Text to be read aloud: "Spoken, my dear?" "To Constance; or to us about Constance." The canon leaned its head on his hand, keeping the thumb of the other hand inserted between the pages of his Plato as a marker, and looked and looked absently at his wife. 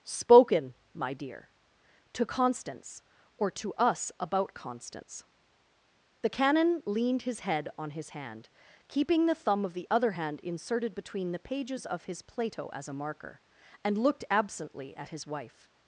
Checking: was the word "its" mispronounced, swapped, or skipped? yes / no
yes